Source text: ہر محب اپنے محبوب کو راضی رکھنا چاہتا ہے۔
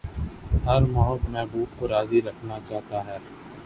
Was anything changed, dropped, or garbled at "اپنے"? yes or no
yes